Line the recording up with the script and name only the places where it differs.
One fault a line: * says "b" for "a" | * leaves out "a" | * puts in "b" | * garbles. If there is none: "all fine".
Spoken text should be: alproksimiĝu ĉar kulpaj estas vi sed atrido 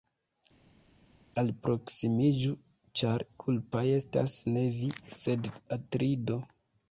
* puts in "ne"